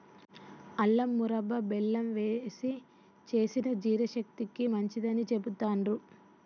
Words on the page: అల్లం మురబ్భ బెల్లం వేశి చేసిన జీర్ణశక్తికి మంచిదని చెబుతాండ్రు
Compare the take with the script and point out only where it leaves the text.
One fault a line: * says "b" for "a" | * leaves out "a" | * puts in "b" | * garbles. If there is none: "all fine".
all fine